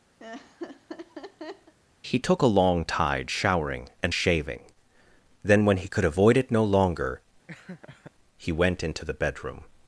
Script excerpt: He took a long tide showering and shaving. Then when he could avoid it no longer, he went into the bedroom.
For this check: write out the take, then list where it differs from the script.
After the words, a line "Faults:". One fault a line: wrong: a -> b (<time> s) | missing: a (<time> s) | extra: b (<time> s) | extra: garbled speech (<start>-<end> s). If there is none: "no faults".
He took a long tide showering and shaving. Then when he could avoid it no longer, he went into the bedroom.
Faults:
no faults